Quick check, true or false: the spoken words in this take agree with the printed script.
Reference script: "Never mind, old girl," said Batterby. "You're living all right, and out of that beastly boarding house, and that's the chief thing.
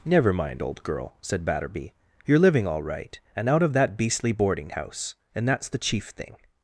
true